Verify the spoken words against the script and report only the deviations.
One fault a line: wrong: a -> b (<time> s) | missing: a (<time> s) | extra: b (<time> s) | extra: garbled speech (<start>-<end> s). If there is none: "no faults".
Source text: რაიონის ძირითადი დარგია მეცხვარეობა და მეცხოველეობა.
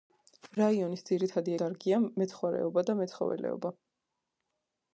no faults